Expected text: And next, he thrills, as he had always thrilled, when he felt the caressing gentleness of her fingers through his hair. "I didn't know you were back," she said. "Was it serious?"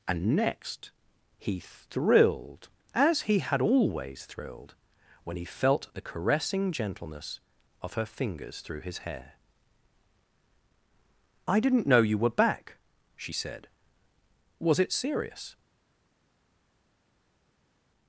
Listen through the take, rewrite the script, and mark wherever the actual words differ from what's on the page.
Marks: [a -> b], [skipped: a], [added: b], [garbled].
And next, he [thrills, -> thrilled] as he had always thrilled, when he felt the caressing gentleness of her fingers through his hair. "I didn't know you were back," she said. "Was it serious?"